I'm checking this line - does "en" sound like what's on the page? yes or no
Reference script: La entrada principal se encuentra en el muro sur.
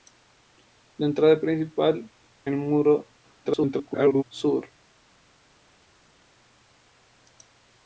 no